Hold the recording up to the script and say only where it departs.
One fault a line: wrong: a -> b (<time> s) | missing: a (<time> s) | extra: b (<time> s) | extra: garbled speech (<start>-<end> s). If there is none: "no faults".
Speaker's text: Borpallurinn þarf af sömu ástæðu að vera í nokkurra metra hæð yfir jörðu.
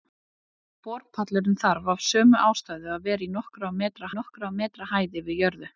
extra: nokkurra metra (4.2 s)